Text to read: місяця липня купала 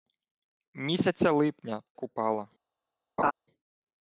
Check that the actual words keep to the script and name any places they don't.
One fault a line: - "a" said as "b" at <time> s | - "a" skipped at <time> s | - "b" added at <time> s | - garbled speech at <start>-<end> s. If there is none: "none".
none